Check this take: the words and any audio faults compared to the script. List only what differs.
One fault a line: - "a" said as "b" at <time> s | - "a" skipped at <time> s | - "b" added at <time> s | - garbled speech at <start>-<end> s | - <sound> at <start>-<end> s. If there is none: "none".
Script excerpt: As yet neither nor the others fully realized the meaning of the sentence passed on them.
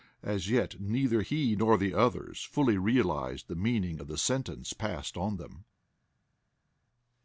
- "he" added at 1.2 s